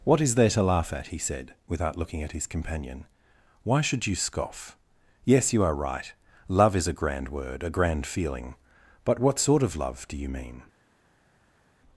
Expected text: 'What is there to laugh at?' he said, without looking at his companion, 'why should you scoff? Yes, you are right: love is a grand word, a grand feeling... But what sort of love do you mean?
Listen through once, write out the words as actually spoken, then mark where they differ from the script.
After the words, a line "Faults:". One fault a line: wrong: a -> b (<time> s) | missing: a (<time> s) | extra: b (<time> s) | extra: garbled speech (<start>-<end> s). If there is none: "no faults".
'What is there to laugh at?' he said, without looking at his companion, 'why should you scoff? Yes, you are right: love is a grand word, a grand feeling... But what sort of love do you mean?
Faults:
no faults